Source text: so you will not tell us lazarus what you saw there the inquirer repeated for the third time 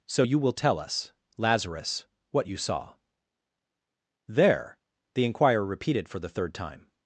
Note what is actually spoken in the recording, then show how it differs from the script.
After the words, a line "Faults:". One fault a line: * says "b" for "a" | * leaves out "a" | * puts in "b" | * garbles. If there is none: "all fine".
so you will tell us lazarus what you saw there the inquirer repeated for the third time
Faults:
* leaves out "not"